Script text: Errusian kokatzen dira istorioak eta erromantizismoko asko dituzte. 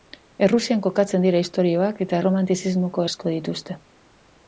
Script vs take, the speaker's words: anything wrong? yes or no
no